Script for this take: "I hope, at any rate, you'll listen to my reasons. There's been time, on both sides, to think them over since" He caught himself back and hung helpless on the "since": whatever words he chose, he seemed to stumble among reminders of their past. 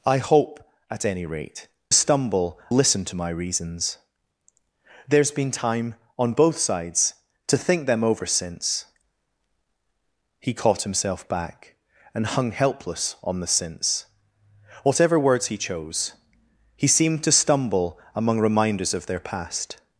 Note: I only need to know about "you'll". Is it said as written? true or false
false